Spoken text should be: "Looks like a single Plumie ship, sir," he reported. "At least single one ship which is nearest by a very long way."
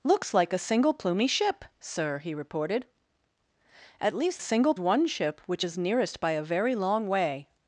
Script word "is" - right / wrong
right